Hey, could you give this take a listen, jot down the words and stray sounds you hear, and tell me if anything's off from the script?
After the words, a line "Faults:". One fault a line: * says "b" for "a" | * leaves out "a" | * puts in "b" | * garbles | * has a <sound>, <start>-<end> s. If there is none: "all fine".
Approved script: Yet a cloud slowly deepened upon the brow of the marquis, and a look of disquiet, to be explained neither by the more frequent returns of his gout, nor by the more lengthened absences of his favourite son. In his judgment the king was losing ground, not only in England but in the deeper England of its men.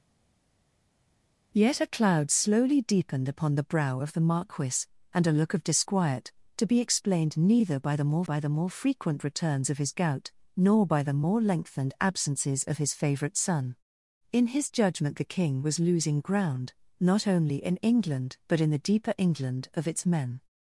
Yet a cloud slowly deepened upon the brow of the marquis, and a look of disquiet, to be explained neither by the more by the more frequent returns of his gout, nor by the more lengthened absences of his favourite son. In his judgment the king was losing ground, not only in England but in the deeper England of its men.
Faults:
* puts in "by the more"